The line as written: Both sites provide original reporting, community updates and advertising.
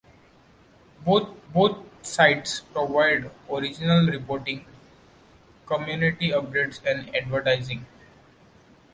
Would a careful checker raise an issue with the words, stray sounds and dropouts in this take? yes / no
yes